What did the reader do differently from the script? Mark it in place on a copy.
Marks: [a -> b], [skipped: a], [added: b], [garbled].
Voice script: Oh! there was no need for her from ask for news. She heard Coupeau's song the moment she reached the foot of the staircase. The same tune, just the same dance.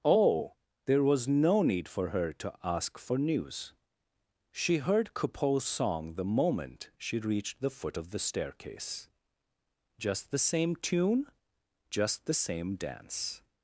Oh! there was no need for her [from -> to] ask for news. She heard Coupeau's song the moment she reached the foot of the staircase. [added: Just] The same tune, just the same dance.